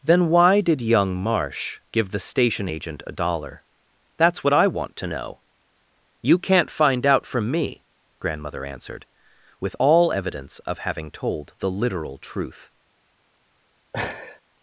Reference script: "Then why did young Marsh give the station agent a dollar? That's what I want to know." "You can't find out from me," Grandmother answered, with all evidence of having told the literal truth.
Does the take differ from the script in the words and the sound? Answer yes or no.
yes